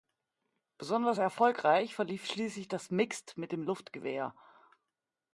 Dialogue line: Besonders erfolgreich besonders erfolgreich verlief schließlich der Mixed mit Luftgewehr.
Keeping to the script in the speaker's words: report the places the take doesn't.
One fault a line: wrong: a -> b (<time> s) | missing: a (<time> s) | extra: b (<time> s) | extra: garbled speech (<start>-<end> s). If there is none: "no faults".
missing: besonders erfolgreich (1.9 s)
wrong: der -> das (2.7 s)
extra: dem (3.5 s)